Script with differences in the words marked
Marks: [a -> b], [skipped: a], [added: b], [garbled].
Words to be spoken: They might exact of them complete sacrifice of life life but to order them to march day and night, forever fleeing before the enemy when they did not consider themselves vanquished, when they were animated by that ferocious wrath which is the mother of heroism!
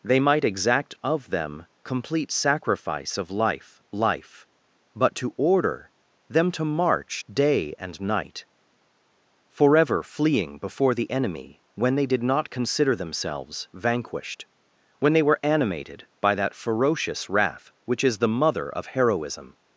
They might exact of them complete sacrifice of life life but to order them to march day and night, forever fleeing before the enemy when they did not consider themselves vanquished, when they were animated by that ferocious wrath which is the mother of heroism!